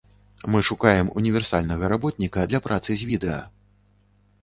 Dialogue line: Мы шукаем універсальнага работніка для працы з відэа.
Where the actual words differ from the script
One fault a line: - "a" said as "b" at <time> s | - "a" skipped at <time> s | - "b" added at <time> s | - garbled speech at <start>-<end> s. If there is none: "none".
none